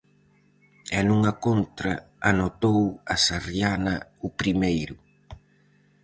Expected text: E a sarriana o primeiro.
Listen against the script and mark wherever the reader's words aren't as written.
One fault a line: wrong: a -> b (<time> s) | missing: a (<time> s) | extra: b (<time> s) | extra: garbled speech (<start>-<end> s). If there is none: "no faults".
extra: nunha contra anotou (1.1 s)